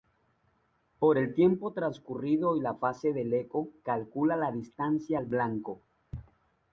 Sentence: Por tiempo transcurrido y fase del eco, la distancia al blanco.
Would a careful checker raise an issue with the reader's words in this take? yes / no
yes